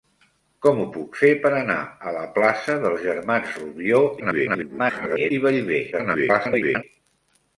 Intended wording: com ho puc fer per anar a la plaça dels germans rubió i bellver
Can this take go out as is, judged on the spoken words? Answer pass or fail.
fail